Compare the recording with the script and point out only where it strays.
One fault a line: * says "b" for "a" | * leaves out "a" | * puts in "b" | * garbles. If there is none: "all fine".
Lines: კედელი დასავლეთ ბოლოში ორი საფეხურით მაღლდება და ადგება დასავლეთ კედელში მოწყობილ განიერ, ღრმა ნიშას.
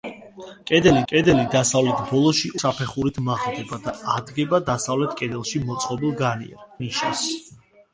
* puts in "კედელი"
* leaves out "ორი"
* leaves out "ღრმა"